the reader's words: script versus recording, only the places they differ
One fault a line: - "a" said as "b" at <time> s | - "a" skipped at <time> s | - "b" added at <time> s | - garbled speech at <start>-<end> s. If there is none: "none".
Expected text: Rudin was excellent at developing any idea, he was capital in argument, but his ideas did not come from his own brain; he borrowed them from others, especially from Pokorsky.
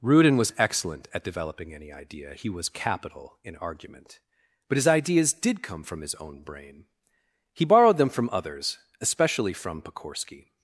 - "not" skipped at 5.6 s